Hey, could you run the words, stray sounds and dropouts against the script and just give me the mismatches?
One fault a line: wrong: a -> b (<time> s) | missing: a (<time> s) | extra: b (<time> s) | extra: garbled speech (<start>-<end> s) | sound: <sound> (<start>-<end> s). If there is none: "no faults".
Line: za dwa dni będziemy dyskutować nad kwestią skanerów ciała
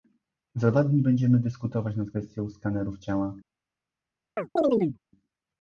sound: chirp (4.4-5.0 s)